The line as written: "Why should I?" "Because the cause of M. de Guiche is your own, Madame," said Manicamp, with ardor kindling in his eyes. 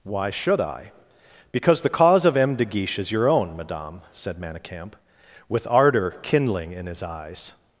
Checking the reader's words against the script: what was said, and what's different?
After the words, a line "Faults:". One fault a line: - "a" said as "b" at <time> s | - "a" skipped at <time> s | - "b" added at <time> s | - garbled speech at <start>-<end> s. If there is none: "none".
"Why should I?" "Because the cause of M. de Guiche is your own, Madame," said Manicamp, with ardor kindling in his eyes.
Faults:
none